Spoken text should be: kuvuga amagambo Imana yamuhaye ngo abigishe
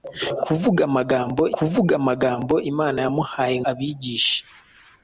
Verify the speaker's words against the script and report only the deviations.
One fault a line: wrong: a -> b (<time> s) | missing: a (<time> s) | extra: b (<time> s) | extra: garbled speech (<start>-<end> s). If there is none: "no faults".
extra: kuvuga amagambo (1.6 s)
missing: ngo (3.6 s)